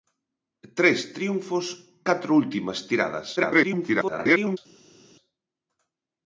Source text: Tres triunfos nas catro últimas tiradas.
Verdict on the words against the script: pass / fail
fail